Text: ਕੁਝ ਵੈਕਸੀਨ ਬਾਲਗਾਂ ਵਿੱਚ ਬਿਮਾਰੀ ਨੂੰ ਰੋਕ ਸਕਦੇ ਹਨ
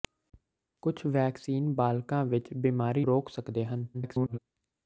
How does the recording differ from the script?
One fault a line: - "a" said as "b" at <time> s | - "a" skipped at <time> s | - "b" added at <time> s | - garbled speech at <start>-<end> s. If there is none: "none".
- "ਨੂੰ" skipped at 3.0 s
- garbled speech at 3.9-4.4 s